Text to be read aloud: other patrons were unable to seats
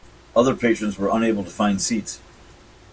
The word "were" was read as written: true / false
true